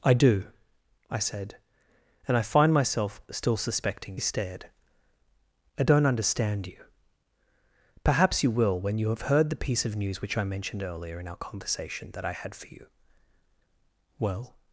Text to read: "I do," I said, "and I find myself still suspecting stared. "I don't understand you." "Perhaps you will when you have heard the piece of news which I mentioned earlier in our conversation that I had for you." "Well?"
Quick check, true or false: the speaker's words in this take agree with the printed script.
true